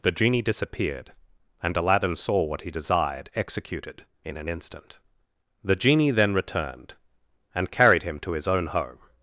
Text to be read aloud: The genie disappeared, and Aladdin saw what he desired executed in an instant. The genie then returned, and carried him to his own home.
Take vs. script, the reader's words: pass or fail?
pass